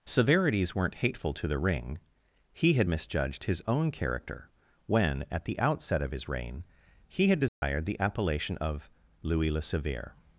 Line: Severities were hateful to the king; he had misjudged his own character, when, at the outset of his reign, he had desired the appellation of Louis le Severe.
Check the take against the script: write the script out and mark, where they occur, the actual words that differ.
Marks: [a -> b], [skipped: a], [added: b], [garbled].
Severities [were -> weren't] hateful to the [king; -> ring] he had misjudged his own character, when, at the outset of his reign, he had desired the appellation of Louis le Severe.